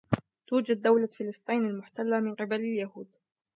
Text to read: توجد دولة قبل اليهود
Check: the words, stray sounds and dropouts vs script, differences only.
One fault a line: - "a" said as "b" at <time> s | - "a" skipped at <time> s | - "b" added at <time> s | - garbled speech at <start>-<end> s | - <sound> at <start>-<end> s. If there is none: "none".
- "فلسطين المحتلة من" added at 1.1 s